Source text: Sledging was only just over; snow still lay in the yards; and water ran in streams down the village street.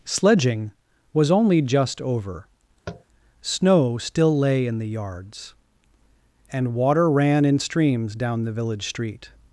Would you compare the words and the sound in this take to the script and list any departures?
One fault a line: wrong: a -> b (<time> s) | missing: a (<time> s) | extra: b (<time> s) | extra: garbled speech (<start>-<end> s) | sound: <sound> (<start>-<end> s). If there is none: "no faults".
sound: tap (2.9-3.0 s)